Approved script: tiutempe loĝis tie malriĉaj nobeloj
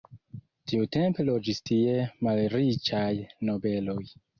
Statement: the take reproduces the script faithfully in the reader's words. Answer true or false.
true